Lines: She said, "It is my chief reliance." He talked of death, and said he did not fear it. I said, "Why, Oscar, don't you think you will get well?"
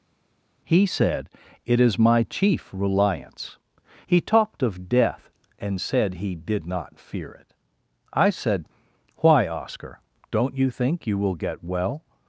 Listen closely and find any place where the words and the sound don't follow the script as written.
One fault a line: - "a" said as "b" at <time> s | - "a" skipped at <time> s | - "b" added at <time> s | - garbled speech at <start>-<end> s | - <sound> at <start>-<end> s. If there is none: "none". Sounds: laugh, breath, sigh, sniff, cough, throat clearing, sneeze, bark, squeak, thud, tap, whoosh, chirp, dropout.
- "She" said as "He" at 0.6 s